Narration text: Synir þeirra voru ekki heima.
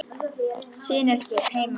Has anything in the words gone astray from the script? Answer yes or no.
yes